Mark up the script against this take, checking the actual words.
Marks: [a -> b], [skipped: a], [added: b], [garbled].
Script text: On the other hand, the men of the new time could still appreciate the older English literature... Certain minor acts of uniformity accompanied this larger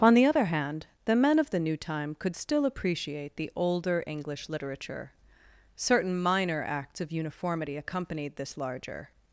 On the other hand, the men of the new time could still appreciate the older English literature... Certain minor acts of uniformity accompanied this larger